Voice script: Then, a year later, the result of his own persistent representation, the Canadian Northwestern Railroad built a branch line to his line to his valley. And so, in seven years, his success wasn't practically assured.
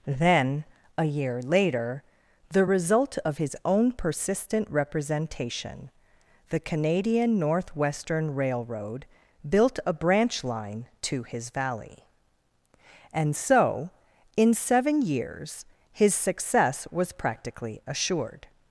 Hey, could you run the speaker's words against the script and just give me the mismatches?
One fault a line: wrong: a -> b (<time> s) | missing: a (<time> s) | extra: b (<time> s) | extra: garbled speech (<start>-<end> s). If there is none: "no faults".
missing: line to his (11.5 s)
wrong: wasn't -> was (16.9 s)